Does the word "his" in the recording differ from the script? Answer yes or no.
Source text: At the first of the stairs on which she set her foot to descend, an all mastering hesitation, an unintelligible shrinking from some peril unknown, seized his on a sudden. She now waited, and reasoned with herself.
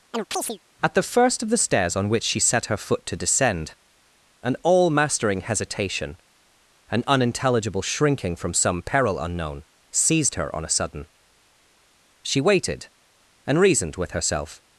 yes